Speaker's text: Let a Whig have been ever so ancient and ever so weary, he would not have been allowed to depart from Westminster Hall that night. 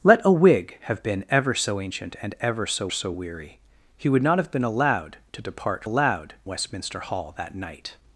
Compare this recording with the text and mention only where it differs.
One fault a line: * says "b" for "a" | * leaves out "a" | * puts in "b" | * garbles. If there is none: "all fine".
* puts in "so"
* says "allowed" for "from"